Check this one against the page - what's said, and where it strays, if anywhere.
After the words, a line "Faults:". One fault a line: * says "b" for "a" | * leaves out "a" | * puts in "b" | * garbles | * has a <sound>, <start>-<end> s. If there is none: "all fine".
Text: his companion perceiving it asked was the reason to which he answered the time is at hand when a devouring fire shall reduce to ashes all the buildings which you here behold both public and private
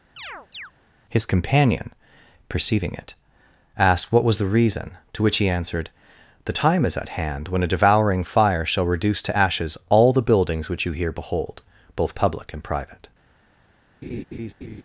his companion perceiving it asked what was the reason to which he answered the time is at hand when a devouring fire shall reduce to ashes all the buildings which you here behold both public and private
Faults:
* has a chirp, 0.2-0.7 s
* puts in "what"
* has a laugh, 14.0-14.8 s